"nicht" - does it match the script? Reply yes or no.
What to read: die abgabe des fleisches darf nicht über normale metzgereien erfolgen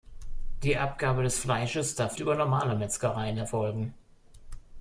no